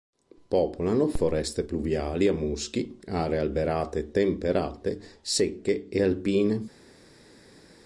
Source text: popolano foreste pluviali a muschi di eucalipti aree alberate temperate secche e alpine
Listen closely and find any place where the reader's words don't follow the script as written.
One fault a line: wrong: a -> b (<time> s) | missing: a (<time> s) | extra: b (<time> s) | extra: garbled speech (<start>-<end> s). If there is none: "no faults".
missing: di eucalipti (3.0 s)